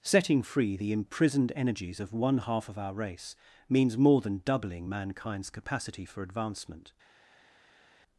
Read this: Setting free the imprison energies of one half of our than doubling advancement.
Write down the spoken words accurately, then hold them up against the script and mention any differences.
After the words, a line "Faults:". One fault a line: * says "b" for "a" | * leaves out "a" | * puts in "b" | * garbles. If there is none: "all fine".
Setting free the imprisoned energies of one half of our race, means more than doubling mankind's capacity for advancement.
Faults:
* says "imprisoned" for "imprison"
* puts in "race means more"
* puts in "mankind's capacity for"